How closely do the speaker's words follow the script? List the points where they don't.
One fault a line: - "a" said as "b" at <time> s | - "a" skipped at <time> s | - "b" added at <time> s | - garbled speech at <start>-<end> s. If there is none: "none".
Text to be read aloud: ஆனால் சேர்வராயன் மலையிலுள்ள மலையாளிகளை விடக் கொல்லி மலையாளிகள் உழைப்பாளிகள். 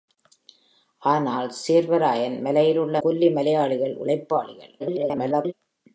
- "மலையாளிகளை விடக்" skipped at 3.0 s
- garbled speech at 4.8-5.5 s